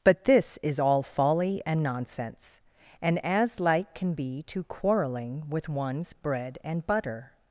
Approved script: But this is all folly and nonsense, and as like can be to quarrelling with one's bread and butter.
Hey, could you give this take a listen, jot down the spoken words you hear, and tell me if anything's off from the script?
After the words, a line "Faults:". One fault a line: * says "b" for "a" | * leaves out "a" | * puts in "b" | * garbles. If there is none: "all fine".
But this is all folly and nonsense, and as like can be to quarrelling with one's bread and butter.
Faults:
all fine